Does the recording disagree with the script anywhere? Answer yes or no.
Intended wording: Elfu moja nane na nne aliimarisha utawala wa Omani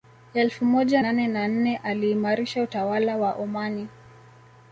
no